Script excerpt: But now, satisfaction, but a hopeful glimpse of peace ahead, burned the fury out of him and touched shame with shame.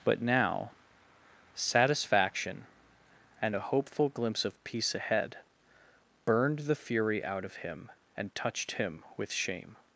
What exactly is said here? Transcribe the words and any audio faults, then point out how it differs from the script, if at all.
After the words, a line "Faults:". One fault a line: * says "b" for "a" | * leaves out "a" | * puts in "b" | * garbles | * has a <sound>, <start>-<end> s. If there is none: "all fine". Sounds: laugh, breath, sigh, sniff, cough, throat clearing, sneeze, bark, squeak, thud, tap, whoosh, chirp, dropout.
But now, satisfaction, and a hopeful glimpse of peace ahead, burned the fury out of him and touched him with shame.
Faults:
* says "and" for "but"
* says "him" for "shame"